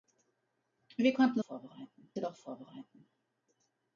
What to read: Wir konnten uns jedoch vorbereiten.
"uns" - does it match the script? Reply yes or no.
no